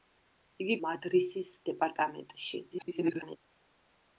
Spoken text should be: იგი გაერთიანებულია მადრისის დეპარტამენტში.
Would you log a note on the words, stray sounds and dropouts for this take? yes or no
yes